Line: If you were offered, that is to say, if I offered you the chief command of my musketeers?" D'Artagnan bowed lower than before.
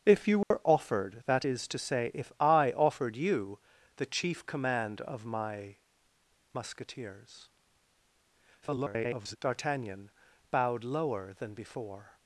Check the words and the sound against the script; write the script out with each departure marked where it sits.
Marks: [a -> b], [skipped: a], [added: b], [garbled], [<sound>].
If you were [dropout] offered, that is to say, if I offered you the chief command of my musketeers?" [garbled] D'Artagnan bowed lower than before.